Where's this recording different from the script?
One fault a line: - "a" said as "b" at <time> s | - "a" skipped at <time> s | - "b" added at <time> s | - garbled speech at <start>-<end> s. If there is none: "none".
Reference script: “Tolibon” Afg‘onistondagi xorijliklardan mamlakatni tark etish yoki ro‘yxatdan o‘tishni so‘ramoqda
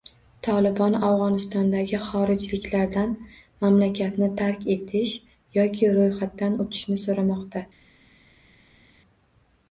none